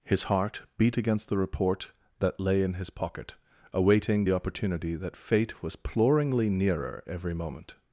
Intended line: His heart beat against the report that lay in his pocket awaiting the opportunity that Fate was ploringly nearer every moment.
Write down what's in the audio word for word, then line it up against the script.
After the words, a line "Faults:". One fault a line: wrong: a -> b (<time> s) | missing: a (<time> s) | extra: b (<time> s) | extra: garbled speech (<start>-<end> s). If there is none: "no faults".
His heart beat against the report that lay in his pocket awaiting the opportunity that Fate was ploringly nearer every moment.
Faults:
no faults